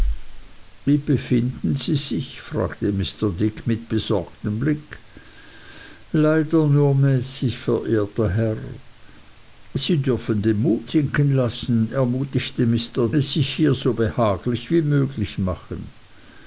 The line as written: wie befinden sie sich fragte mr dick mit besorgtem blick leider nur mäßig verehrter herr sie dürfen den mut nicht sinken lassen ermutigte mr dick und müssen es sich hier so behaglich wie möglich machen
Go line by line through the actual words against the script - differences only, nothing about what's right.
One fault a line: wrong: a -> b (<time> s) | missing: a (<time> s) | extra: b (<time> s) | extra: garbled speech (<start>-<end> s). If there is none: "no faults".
missing: nicht (10.9 s)
missing: dick und müssen (13.1 s)